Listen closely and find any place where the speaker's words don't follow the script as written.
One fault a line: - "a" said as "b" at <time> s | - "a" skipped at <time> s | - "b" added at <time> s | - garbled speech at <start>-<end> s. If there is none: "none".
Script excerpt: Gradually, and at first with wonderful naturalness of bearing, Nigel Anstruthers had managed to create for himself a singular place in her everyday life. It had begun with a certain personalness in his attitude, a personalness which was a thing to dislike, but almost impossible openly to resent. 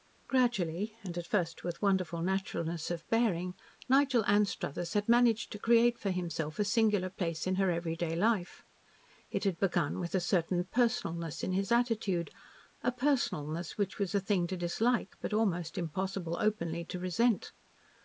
none